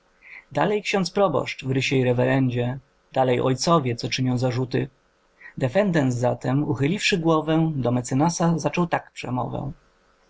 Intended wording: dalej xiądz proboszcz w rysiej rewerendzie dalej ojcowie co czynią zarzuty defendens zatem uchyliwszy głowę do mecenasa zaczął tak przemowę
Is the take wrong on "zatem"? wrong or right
right